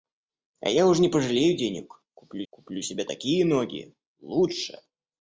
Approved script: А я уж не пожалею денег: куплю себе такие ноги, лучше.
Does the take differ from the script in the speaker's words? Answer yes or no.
yes